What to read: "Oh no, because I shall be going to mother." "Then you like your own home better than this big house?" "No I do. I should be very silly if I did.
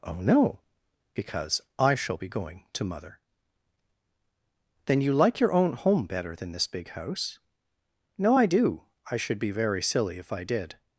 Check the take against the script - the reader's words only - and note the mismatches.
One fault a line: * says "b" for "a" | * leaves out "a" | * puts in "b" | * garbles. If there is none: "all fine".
all fine